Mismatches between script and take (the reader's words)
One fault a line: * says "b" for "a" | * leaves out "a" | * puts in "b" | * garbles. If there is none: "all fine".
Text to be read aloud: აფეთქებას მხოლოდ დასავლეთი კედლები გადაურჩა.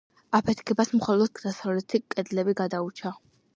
all fine